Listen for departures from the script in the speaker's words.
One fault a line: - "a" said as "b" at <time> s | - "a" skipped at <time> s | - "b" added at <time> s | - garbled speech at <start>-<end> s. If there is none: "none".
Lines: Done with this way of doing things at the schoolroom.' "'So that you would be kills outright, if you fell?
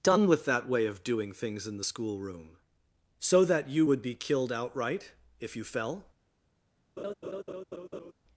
- "this" said as "that" at 0.5 s
- "at" said as "in" at 1.7 s
- "kills" said as "killed" at 4.1 s